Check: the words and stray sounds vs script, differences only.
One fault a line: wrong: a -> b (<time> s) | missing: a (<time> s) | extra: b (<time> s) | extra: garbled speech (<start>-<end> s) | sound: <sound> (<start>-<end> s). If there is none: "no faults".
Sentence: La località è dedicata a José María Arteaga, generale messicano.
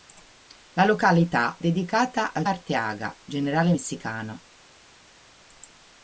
missing: è (1.6 s)
missing: José María (2.4 s)